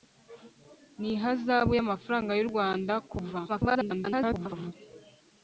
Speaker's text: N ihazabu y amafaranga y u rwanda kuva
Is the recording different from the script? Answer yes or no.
yes